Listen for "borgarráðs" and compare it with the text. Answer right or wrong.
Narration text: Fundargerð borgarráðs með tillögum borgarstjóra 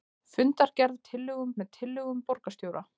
wrong